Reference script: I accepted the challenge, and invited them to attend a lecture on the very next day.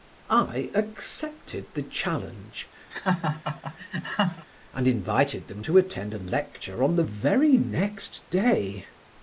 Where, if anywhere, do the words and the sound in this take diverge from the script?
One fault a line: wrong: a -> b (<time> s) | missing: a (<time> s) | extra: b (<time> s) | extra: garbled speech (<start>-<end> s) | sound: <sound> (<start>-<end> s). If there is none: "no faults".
sound: laugh (2.9-4.5 s)